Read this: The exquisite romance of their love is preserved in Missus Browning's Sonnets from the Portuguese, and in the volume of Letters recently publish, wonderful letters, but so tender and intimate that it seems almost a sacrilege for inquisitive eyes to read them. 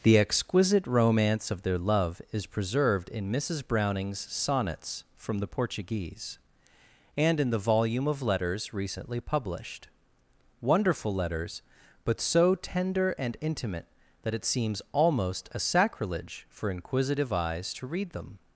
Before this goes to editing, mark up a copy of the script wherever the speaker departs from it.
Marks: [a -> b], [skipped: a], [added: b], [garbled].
The exquisite romance of their love is preserved in Missus Browning's Sonnets from the Portuguese, and in the volume of Letters recently [publish, -> published] wonderful letters, but so tender and intimate that it seems almost a sacrilege for inquisitive eyes to read them.